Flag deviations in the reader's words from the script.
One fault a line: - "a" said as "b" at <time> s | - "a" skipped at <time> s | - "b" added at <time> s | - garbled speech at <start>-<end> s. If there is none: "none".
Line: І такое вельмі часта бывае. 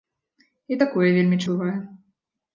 - "часта" skipped at 1.4 s